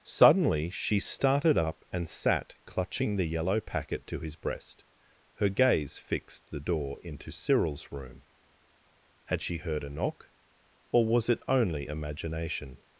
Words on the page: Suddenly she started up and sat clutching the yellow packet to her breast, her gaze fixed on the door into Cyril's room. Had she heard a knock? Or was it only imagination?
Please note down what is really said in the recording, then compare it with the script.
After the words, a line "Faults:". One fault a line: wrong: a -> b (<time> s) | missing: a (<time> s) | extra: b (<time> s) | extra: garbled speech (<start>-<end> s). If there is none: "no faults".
Suddenly she started up and sat clutching the yellow packet to his breast, her gaze fixed the door into Cyril's room. Had she heard a knock? Or was it only imagination?
Faults:
wrong: her -> his (4.2 s)
missing: on (6.5 s)